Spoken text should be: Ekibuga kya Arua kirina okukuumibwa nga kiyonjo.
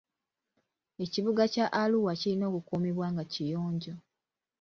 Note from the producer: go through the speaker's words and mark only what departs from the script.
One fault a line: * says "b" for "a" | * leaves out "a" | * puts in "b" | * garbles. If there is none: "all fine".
all fine